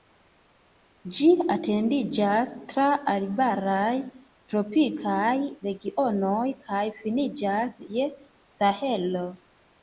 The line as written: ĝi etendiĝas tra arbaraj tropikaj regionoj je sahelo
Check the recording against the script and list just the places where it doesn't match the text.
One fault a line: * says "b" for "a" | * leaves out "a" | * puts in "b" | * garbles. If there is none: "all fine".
* puts in "kaj finiĝas"